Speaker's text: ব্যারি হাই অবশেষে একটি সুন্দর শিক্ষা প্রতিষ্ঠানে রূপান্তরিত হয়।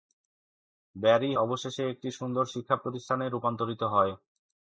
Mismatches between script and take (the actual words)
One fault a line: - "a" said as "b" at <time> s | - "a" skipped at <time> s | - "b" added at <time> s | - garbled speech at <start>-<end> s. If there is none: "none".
- "হাই" skipped at 1.3 s